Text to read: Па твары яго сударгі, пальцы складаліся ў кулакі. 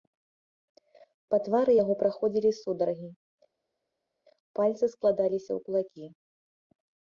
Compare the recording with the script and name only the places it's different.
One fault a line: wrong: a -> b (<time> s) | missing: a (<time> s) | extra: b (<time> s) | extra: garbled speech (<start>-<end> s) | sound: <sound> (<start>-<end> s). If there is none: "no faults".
extra: праходзілі (2.0 s)